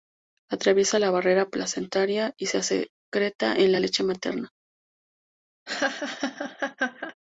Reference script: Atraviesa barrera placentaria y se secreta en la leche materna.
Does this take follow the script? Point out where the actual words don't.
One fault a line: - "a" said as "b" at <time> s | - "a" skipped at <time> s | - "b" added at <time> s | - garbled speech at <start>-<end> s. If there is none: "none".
- "la" added at 1.0 s